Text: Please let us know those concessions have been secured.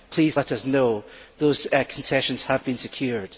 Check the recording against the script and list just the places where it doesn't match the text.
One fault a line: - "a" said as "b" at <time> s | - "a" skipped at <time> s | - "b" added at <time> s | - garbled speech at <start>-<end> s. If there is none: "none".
none